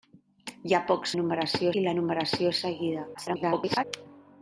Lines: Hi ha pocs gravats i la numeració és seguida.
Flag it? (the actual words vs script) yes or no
yes